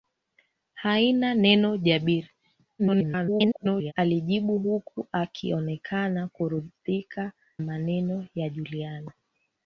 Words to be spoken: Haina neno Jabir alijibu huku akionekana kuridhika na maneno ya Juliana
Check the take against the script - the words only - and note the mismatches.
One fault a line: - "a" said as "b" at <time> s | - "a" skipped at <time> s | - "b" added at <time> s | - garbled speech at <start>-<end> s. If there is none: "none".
- garbled speech at 2.8-3.9 s
- "na" skipped at 7.3 s